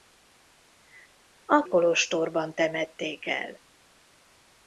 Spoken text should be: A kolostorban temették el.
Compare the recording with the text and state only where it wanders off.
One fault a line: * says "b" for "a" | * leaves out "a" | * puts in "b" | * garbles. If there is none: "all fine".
all fine